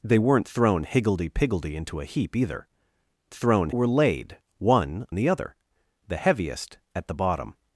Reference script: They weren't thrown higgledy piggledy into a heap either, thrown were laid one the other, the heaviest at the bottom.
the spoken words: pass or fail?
pass